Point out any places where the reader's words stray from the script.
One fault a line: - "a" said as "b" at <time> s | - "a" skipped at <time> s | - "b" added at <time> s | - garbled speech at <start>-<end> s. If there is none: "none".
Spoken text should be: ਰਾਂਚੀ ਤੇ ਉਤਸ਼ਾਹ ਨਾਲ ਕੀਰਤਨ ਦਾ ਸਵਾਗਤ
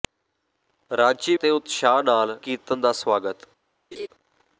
none